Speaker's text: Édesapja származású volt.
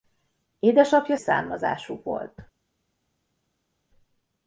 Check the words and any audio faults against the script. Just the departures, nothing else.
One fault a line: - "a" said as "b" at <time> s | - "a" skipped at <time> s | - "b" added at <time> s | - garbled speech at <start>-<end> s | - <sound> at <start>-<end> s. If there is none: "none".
none